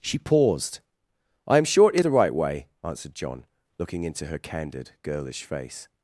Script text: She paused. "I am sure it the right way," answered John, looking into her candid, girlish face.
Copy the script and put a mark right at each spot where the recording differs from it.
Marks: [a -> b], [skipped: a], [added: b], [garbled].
She paused. "I am sure it the right way," answered John, looking into her candid, girlish face.